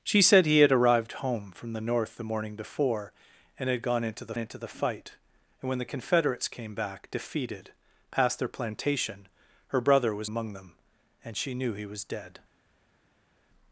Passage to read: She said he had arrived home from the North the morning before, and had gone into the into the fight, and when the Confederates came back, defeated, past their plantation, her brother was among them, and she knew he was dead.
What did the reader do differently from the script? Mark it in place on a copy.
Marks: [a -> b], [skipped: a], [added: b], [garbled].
She said he had arrived home from the North the morning before, and had gone into the into the fight, and when the Confederates came back, defeated, past their plantation, her brother was among them, and she knew he was dead.